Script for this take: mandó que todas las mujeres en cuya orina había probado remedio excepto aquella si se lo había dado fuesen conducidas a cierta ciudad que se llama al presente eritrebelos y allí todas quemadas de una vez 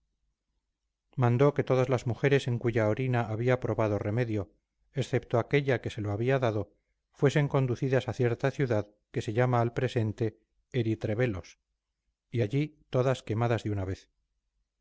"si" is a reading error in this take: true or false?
true